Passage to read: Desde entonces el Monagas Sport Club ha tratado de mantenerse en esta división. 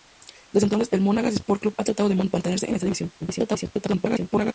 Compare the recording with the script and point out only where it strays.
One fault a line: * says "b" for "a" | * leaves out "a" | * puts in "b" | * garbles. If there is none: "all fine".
* garbles